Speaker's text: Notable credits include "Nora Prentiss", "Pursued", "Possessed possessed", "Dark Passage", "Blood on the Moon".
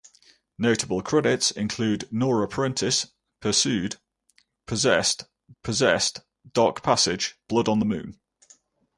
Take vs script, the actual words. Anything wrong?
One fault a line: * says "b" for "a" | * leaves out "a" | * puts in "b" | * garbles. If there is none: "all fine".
all fine